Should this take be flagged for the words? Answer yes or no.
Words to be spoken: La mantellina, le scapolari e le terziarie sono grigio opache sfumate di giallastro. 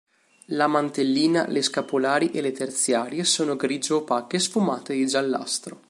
no